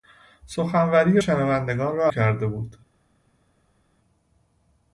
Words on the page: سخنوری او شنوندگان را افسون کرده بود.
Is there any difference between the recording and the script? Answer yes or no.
yes